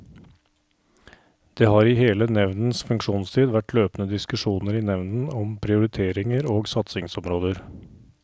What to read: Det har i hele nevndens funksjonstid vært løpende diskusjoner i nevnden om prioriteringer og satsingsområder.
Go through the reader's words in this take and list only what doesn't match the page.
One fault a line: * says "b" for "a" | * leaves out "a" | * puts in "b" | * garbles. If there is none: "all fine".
all fine